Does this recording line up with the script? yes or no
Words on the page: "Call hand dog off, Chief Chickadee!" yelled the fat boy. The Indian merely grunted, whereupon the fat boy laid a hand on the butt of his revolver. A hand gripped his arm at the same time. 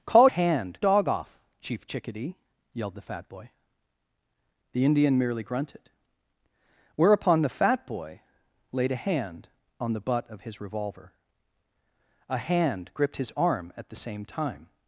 yes